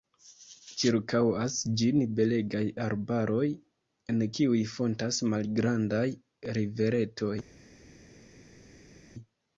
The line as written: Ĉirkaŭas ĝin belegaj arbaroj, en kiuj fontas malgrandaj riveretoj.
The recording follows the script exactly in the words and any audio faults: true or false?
true